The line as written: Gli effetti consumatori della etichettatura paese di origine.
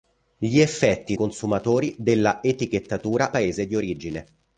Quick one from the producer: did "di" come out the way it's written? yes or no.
yes